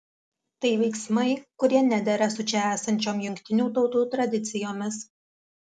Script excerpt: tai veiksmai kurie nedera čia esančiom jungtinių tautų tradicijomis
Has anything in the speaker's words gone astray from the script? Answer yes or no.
yes